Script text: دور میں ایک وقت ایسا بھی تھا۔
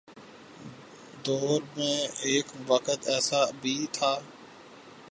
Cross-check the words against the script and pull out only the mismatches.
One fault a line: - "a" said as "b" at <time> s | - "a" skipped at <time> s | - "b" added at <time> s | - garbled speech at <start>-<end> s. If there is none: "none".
none